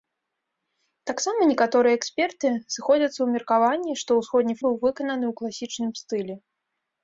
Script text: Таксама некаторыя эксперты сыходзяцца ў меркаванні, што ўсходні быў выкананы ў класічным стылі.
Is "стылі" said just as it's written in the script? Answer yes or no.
yes